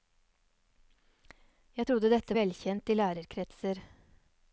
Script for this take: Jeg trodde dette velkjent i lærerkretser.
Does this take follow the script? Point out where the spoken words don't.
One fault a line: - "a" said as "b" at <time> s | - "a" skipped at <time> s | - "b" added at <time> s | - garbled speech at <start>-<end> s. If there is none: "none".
none